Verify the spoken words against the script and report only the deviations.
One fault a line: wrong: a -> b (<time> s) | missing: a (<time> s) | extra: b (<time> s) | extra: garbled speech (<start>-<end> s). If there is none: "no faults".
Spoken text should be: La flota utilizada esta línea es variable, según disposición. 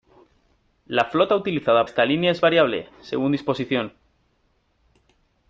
no faults